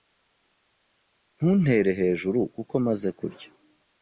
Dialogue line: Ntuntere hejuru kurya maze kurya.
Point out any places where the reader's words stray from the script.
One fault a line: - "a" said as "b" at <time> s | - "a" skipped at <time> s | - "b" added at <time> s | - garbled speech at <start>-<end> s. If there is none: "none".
- "kurya" said as "kuko" at 2.5 s